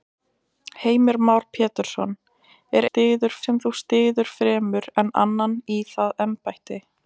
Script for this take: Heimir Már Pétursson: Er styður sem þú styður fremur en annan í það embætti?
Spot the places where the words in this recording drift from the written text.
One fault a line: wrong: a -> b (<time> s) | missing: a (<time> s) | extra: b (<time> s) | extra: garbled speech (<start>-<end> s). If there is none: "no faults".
no faults